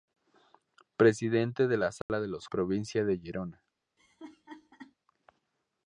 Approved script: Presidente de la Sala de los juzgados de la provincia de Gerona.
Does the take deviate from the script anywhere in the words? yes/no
yes